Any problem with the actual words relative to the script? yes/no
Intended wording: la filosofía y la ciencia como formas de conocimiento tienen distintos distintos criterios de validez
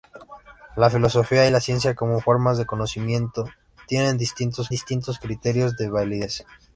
no